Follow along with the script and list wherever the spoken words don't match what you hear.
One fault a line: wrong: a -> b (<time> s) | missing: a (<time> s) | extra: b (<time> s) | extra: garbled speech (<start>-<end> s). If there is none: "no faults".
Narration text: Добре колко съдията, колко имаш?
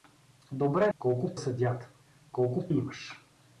no faults